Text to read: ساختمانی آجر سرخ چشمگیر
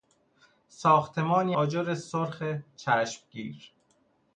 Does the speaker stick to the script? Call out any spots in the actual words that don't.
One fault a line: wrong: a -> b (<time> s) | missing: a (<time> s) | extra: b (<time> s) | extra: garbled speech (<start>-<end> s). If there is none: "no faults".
no faults